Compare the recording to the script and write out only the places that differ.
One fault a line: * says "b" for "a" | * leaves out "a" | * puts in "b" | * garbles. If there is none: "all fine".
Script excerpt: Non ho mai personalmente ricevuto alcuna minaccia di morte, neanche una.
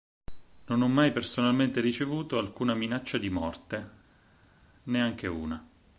all fine